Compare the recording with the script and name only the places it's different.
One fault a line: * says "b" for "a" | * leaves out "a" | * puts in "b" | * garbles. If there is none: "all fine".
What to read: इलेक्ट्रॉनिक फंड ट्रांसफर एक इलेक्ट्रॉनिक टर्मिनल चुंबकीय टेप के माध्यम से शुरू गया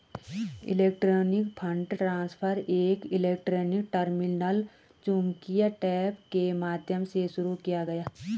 * puts in "किया"